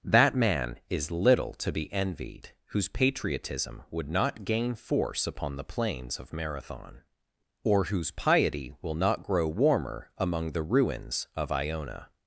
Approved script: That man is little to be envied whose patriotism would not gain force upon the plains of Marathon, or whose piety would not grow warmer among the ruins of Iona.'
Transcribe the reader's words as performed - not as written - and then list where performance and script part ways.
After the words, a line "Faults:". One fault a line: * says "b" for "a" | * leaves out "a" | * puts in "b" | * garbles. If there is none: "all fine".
That man is little to be envied whose patriotism would not gain force upon the plains of Marathon, or whose piety will not grow warmer among the ruins of Iona.'
Faults:
* says "will" for "would"